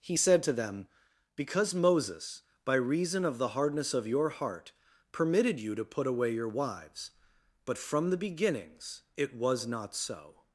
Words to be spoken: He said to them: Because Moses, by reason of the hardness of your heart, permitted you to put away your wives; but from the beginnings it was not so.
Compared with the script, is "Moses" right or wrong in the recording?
right